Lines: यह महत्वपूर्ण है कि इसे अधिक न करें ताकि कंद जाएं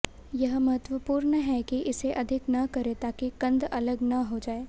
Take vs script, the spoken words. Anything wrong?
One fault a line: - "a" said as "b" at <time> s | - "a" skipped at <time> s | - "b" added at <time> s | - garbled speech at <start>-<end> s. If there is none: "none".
- "अलग न हो" added at 3.6 s